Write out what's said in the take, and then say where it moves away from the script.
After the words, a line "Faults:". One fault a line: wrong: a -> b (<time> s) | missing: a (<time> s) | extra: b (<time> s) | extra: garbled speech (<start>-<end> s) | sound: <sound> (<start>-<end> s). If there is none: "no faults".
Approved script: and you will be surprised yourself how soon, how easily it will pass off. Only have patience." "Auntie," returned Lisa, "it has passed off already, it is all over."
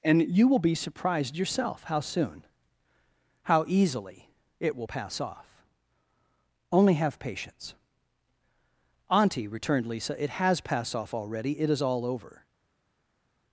and you will be surprised yourself how soon, how easily it will pass off. Only have patience." "Auntie," returned Lisa, "it has passed off already, it is all over."
Faults:
no faults